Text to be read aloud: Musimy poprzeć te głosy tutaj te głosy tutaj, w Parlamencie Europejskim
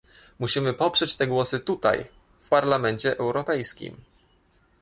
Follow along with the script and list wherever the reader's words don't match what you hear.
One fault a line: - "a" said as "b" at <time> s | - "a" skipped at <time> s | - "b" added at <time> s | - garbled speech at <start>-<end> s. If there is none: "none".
- "te głosy tutaj" skipped at 2.0 s